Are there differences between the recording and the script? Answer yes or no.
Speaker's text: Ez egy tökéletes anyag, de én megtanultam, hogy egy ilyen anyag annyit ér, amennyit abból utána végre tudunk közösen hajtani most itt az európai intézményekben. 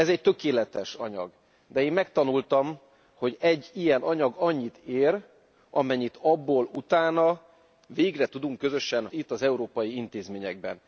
yes